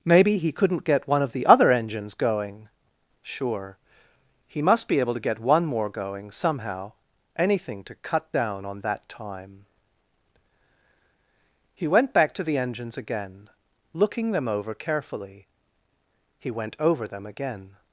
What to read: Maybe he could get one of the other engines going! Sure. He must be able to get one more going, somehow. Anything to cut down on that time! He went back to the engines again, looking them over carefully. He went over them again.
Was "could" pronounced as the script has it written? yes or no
no